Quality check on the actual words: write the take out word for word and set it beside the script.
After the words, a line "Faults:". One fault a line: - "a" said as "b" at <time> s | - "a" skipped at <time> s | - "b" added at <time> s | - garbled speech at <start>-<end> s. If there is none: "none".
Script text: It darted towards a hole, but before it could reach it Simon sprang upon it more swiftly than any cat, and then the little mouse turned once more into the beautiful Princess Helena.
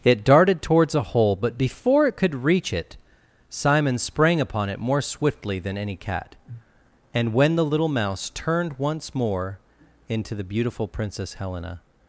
It darted towards a hole, but before it could reach it Simon sprang upon it more swiftly than any cat, and when the little mouse turned once more into the beautiful Princess Helena.
Faults:
- "then" said as "when" at 7.3 s